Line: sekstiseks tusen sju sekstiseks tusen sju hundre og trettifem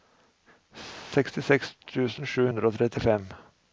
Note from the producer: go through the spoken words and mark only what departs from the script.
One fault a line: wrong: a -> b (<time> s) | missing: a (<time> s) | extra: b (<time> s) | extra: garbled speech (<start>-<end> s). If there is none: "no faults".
missing: sekstiseks tusen sju (2.5 s)